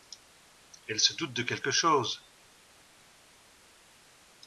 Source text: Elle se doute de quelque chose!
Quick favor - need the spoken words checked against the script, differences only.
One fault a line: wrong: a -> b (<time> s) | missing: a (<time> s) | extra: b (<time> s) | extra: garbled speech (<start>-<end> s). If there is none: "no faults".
no faults